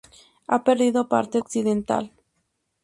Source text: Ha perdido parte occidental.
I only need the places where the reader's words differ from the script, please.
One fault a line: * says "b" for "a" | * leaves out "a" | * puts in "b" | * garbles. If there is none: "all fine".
all fine